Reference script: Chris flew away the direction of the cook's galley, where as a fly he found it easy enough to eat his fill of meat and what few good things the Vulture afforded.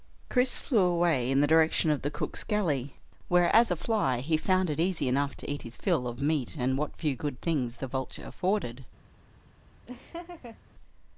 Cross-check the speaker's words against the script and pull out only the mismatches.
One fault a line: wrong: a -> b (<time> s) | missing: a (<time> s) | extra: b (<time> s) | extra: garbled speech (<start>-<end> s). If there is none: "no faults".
extra: in (1.3 s)